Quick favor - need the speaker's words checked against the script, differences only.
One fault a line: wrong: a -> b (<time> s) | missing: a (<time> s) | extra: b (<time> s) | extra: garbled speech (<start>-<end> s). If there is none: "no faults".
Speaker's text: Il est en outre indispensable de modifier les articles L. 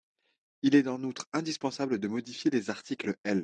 no faults